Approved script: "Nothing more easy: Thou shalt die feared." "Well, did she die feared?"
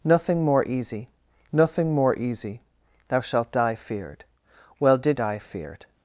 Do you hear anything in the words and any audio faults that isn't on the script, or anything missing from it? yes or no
yes